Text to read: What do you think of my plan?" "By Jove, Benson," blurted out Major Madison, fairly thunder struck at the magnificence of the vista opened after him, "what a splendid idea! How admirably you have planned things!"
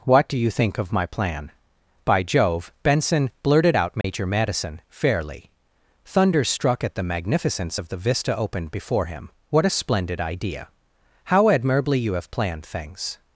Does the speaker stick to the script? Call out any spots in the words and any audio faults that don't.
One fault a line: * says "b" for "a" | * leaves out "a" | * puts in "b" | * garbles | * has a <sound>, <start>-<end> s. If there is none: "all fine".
* has a dropout, 4.0-4.0 s
* says "before" for "after"